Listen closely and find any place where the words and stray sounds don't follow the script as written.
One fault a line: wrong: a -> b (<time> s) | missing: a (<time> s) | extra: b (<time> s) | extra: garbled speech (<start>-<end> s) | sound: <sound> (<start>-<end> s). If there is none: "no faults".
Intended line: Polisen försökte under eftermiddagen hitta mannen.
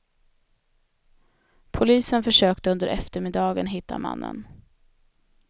no faults